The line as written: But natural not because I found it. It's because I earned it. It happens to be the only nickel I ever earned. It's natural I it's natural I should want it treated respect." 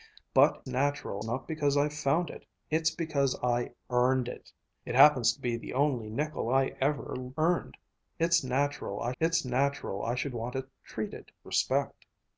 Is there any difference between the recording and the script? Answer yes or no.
no